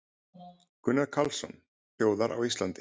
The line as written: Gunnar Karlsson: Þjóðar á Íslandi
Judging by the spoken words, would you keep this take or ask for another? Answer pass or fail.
pass